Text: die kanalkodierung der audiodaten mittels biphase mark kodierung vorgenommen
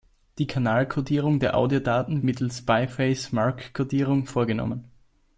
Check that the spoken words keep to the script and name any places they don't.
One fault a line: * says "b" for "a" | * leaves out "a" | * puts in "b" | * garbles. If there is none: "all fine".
all fine